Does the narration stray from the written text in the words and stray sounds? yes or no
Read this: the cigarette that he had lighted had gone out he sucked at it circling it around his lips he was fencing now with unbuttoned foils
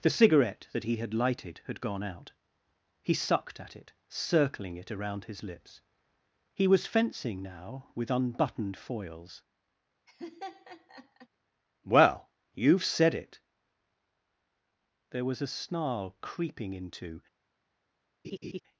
yes